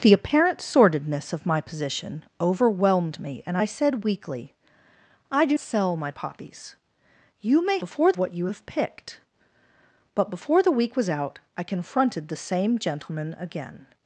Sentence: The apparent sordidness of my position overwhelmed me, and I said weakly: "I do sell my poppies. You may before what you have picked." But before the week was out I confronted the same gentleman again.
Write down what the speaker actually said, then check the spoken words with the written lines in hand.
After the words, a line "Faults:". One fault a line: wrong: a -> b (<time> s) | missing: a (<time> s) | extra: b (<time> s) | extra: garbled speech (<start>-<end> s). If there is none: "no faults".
The apparent sordidness of my position overwhelmed me, and I said weakly: "I do sell my poppies. You may before what you have picked." But before the week was out I confronted the same gentleman again.
Faults:
no faults